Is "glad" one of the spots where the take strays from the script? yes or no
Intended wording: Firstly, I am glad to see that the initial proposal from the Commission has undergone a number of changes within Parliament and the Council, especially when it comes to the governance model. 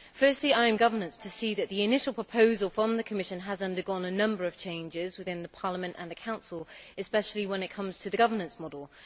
yes